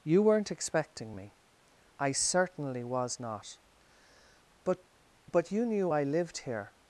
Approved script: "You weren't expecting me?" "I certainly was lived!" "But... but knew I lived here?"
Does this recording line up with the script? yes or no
no